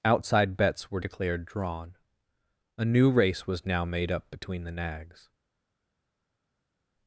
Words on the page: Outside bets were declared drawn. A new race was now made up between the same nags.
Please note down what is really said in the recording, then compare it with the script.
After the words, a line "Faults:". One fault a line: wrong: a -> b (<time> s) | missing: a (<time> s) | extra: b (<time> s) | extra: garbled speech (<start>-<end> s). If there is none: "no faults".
Outside bets were declared drawn. A new race was now made up between the nags.
Faults:
missing: same (4.7 s)